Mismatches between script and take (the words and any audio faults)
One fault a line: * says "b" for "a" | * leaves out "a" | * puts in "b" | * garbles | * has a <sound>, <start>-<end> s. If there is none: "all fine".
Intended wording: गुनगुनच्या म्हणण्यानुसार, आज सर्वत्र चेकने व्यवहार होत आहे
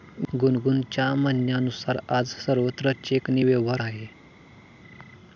* leaves out "होत"